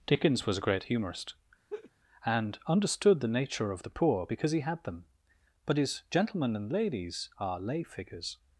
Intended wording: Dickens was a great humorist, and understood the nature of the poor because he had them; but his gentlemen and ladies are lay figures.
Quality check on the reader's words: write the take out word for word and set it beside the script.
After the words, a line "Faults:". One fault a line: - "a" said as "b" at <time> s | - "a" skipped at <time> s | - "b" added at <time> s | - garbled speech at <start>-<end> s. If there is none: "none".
Dickens was a great humorist, and understood the nature of the poor because he had them; but his gentlemen and ladies are lay figures.
Faults:
none